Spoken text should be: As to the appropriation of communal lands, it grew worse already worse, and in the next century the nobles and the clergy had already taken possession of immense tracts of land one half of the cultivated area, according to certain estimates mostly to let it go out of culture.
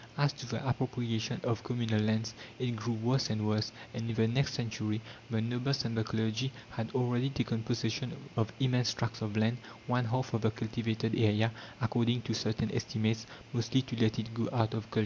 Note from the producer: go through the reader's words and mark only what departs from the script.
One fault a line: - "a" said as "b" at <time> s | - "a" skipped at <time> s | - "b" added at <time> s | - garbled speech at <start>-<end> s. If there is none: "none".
- "already" said as "and" at 3.3 s